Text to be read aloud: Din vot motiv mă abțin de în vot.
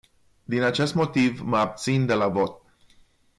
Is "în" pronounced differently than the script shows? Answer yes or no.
yes